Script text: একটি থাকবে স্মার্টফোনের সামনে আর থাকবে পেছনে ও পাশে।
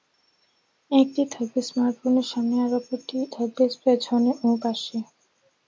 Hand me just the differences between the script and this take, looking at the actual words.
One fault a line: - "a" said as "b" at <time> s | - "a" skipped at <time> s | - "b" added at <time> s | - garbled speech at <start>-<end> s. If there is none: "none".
none